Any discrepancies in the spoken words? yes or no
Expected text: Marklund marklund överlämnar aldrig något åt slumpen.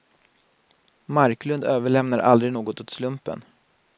yes